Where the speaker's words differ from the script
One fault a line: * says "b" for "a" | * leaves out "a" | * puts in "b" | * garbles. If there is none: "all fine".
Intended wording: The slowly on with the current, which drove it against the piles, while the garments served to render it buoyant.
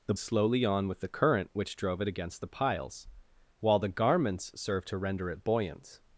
all fine